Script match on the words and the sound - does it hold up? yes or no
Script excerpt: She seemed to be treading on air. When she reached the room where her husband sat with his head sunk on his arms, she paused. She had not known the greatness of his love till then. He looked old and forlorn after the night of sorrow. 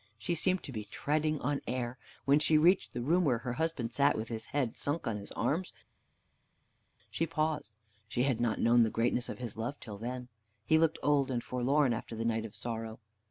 yes